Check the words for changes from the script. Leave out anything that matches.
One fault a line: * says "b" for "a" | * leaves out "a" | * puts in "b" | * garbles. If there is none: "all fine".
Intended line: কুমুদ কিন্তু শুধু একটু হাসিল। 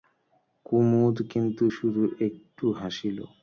all fine